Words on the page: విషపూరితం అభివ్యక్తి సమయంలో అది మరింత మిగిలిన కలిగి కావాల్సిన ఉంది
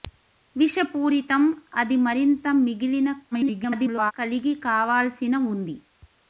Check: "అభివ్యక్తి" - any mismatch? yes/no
yes